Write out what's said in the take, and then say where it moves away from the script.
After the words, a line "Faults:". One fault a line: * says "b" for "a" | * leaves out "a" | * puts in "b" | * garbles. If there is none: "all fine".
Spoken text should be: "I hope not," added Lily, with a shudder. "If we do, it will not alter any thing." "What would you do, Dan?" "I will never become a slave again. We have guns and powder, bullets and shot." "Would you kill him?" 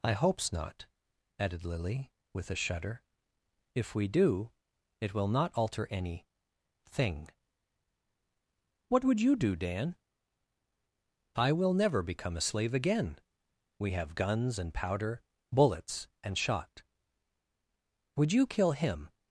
"I hopes not," added Lily, with a shudder. "If we do, it will not alter any thing." "What would you do, Dan?" "I will never become a slave again. We have guns and powder, bullets and shot." "Would you kill him?"
Faults:
* says "hopes" for "hope"